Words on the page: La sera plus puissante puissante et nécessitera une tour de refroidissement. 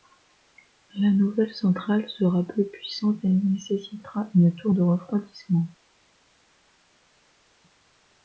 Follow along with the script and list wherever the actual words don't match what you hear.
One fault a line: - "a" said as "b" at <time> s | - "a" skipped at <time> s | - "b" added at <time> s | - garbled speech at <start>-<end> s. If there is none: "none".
- "nouvelle centrale" added at 1.1 s
- "puissante" skipped at 3.2 s